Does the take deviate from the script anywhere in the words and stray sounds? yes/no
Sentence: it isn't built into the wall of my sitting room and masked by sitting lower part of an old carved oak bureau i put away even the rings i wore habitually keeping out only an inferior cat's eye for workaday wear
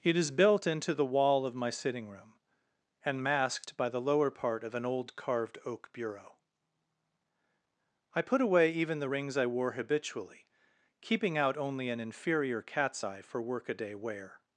yes